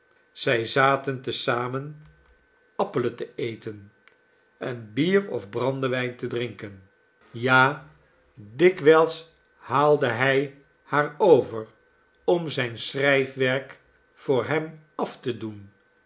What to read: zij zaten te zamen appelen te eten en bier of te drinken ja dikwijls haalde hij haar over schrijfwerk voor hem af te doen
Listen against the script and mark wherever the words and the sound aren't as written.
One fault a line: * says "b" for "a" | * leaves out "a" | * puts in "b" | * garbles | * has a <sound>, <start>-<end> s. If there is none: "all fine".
* puts in "brandewijn"
* puts in "om zijn"